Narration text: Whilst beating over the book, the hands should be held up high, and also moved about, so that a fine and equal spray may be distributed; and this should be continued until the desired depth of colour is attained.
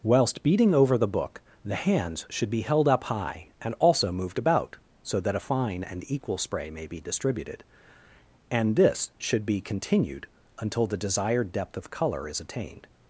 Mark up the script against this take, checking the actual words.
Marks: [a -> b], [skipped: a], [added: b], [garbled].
Whilst beating over the book, the hands should be held up high, and also moved about, so that a fine and equal spray may be distributed; and this should be continued until the desired depth of colour is attained.